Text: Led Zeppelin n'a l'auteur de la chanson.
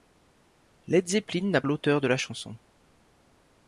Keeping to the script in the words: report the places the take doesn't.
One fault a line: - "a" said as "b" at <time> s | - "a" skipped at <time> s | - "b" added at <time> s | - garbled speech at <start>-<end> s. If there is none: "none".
none